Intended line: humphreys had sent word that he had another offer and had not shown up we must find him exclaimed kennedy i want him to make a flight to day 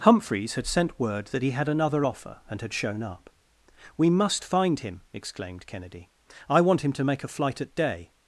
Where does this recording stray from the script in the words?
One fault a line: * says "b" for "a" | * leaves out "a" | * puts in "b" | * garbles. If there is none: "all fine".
* leaves out "not"
* says "at" for "to"